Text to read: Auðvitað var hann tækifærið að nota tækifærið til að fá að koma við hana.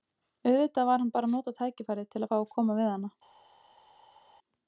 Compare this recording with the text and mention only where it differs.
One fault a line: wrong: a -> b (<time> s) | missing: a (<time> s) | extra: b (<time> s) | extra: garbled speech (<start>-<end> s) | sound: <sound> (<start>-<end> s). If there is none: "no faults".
wrong: tækifærið -> bara (1.2 s)